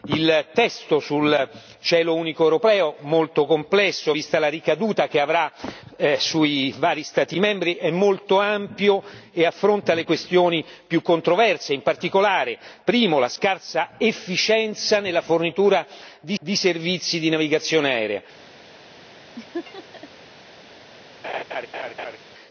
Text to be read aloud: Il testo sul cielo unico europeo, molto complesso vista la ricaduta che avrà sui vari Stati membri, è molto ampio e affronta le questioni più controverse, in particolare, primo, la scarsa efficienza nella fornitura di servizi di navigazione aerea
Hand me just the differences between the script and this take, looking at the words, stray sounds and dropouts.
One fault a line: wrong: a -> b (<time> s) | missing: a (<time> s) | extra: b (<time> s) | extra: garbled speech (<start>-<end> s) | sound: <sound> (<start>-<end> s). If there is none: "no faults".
extra: di (16.4 s)
sound: laugh (19.4-20.1 s)
sound: laugh (21.2-22.2 s)